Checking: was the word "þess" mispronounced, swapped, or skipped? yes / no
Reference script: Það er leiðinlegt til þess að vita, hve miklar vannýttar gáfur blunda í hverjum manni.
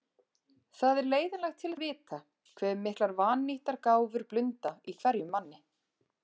yes